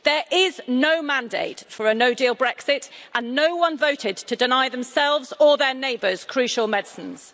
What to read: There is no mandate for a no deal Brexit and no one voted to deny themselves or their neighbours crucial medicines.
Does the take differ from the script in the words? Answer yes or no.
no